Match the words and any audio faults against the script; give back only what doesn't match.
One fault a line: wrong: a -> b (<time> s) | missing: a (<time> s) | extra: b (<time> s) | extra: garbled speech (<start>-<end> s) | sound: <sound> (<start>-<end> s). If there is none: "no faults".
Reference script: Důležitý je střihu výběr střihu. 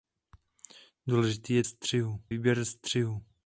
no faults